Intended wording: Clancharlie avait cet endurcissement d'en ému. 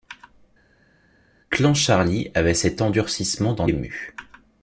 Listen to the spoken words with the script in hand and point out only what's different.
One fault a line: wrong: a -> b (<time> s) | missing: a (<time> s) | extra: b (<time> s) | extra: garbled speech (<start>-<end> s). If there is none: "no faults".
no faults